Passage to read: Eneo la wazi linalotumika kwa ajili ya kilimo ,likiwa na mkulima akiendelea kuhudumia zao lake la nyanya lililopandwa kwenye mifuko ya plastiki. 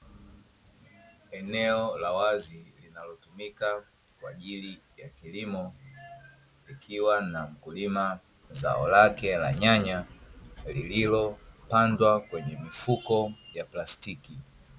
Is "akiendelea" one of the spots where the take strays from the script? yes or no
yes